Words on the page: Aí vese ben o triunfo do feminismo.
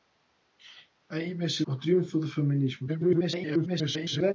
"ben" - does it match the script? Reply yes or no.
no